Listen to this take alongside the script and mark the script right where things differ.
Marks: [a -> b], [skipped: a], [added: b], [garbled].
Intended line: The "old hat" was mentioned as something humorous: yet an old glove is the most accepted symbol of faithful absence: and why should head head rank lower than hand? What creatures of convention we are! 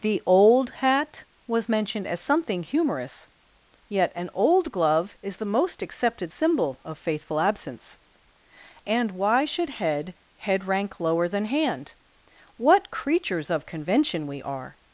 The "old hat" was mentioned as something humorous: yet an old glove is the most accepted symbol of faithful absence: and why should head head rank lower than hand? What creatures of convention we are!